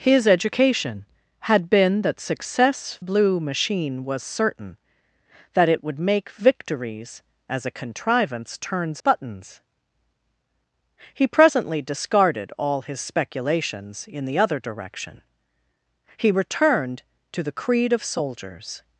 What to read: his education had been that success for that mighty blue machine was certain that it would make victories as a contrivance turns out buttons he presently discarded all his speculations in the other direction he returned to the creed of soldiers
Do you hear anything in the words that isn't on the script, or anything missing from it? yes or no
yes